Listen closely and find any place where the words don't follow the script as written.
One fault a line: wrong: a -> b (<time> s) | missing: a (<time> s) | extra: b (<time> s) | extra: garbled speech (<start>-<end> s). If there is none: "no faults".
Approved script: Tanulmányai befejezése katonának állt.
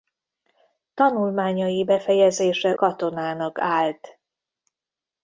no faults